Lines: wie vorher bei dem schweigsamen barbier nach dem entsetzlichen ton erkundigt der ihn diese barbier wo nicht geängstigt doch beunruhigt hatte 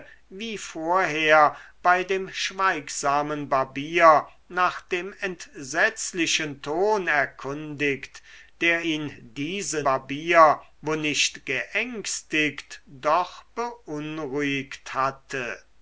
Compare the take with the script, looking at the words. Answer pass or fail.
pass